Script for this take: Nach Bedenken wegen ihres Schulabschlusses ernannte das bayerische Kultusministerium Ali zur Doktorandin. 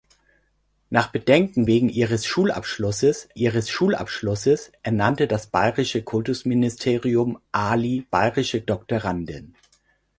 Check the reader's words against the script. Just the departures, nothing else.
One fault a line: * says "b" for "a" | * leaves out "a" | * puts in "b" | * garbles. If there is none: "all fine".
* puts in "ihres Schulabschlusses"
* says "bayerische" for "zur"